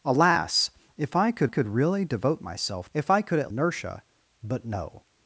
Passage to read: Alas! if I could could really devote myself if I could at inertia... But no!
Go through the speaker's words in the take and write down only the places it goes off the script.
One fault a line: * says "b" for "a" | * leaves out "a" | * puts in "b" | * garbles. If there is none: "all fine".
all fine